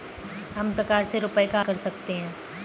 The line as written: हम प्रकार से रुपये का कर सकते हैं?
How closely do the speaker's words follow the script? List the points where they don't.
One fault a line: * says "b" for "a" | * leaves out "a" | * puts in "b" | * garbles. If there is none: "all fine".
all fine